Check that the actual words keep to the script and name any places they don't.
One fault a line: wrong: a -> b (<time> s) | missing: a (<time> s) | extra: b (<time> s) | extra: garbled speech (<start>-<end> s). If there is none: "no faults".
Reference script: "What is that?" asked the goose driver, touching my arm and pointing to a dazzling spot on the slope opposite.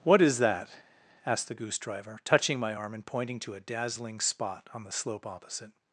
no faults